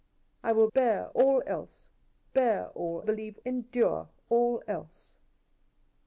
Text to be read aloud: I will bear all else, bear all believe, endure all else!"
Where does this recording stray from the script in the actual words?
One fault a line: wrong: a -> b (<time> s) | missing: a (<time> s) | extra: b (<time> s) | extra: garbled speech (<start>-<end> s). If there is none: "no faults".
no faults